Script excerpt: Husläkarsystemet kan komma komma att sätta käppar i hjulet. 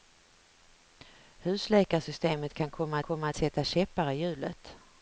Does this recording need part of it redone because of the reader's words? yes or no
no